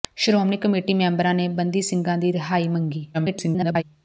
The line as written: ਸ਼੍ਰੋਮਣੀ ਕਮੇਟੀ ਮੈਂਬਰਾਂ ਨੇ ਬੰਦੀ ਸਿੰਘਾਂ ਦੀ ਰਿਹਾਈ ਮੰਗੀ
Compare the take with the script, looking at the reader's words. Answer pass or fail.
fail